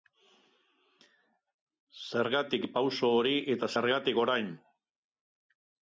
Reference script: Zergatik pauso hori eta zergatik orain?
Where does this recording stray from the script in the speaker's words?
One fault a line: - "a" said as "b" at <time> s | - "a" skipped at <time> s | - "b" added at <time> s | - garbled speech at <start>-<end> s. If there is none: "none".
none